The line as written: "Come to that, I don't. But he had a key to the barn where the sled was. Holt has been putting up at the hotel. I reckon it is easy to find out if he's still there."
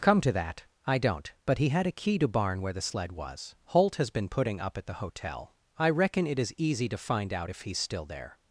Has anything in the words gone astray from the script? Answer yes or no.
yes